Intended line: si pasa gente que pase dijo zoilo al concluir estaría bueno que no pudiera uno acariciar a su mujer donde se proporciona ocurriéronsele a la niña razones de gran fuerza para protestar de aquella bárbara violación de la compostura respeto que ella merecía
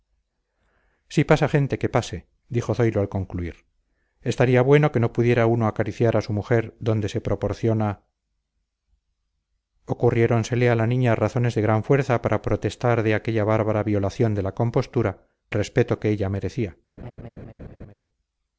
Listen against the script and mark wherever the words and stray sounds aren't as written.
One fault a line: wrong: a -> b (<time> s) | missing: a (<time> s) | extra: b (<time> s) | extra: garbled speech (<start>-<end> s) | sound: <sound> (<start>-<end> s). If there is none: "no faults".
sound: laugh (17.0-17.9 s)